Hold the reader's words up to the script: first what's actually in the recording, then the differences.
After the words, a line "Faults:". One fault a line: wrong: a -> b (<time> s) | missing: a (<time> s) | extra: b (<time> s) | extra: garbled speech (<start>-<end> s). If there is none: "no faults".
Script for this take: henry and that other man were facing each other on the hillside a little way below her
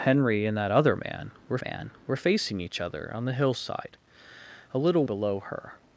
henry and that other man were man were facing each other on the hillside a little below her
Faults:
extra: man were (1.6 s)
missing: way (5.0 s)